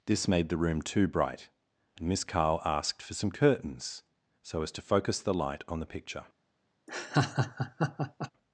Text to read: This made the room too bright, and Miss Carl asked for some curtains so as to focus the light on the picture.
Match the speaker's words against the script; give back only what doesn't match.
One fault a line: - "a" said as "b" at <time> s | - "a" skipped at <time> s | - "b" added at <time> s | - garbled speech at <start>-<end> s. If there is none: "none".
none